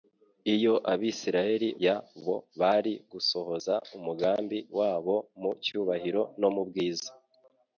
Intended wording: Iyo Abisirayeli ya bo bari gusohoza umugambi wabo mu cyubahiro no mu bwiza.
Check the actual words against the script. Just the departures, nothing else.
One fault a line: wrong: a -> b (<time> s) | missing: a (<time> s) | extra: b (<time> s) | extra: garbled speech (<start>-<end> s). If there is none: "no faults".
no faults